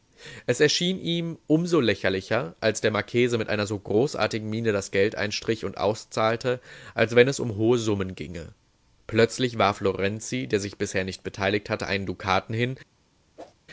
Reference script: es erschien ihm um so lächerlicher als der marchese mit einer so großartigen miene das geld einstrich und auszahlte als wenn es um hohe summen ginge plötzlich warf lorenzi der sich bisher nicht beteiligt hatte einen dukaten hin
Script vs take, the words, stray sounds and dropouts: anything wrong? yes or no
yes